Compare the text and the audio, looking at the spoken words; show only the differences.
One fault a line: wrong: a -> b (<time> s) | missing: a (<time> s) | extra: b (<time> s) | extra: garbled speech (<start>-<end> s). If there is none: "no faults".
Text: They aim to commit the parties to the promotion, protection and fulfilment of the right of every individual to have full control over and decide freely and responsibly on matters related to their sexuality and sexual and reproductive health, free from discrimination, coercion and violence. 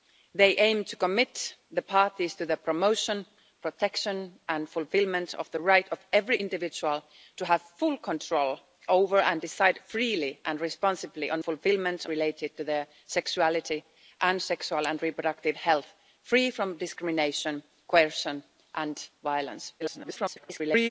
wrong: matters -> fulfilment (11.4 s)
extra: garbled speech (19.8-20.9 s)